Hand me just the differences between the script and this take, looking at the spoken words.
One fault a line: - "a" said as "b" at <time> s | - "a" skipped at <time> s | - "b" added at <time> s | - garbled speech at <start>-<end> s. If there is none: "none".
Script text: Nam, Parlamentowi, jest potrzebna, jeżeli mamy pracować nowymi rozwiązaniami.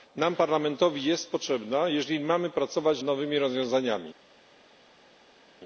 none